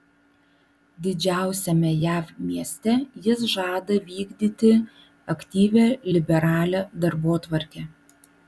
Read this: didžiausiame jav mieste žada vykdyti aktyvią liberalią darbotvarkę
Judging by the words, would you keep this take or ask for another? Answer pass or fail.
fail